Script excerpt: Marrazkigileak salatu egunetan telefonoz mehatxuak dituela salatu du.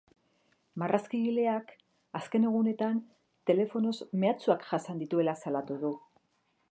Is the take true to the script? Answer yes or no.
no